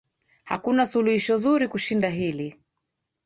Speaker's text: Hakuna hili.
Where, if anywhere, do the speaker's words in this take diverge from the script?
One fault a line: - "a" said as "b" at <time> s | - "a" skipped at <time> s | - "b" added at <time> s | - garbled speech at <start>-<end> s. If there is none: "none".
- "suluhisho zuri kushinda" added at 0.8 s